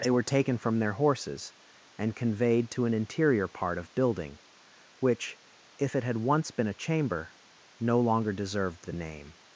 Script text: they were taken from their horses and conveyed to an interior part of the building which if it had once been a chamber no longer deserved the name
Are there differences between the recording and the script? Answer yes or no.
yes